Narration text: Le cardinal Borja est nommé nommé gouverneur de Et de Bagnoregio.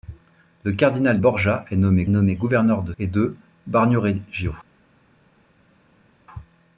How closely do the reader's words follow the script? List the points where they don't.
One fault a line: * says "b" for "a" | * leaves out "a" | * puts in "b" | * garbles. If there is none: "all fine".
all fine